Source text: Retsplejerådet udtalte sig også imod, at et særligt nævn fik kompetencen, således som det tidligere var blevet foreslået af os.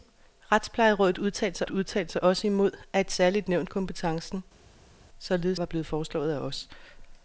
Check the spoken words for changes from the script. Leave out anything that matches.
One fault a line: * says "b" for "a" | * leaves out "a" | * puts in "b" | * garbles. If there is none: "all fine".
* puts in "udtalte sig"
* leaves out "fik"
* leaves out "som det tidligere"